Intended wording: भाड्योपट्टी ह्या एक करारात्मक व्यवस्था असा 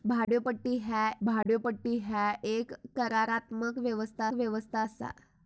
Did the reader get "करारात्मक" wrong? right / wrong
right